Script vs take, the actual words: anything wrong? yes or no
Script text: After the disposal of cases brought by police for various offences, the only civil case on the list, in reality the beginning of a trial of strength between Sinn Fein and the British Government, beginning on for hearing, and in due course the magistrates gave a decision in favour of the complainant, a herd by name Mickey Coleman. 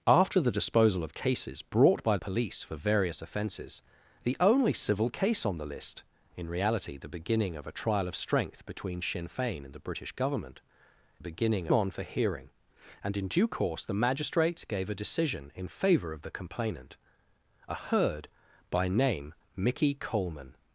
no